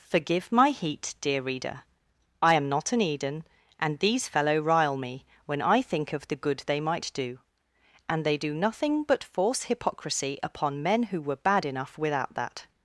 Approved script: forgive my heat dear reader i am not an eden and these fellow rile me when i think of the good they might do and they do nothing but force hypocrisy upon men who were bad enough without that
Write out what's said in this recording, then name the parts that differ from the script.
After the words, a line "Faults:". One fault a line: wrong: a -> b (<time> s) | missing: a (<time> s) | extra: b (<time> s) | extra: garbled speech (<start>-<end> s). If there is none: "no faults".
forgive my heat dear reader i am not an eden and these fellow rile me when i think of the good they might do and they do nothing but force hypocrisy upon men who were bad enough without that
Faults:
no faults